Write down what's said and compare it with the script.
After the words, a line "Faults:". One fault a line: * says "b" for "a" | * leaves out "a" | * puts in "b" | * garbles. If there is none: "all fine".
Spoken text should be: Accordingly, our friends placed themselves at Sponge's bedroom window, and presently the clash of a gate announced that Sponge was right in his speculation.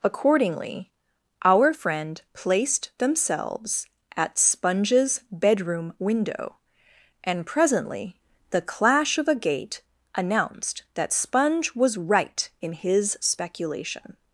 Accordingly, our friend placed themselves at Sponge's bedroom window, and presently the clash of a gate announced that Sponge was right in his speculation.
Faults:
* says "friend" for "friends"